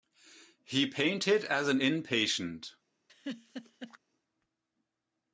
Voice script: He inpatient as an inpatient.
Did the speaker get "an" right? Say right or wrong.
right